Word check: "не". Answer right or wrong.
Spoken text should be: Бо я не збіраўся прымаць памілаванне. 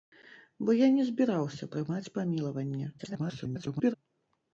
right